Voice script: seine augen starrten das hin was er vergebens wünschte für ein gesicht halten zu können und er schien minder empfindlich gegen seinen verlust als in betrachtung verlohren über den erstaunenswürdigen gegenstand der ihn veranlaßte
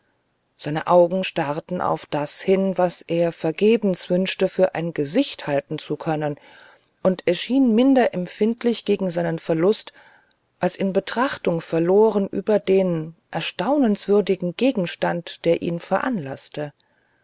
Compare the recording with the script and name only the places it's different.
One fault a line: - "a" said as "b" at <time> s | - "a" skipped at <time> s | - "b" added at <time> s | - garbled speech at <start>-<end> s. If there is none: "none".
- "auf" added at 1.8 s